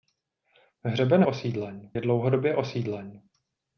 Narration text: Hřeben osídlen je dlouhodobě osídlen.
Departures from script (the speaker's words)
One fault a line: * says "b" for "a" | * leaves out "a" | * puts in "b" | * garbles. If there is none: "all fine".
all fine